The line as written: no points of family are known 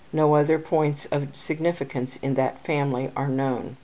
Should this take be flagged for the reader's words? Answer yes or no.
yes